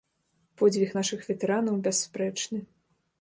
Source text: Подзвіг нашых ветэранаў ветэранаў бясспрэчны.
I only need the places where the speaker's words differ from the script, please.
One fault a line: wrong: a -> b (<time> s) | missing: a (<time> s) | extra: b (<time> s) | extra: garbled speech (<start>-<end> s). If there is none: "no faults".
missing: ветэранаў (1.8 s)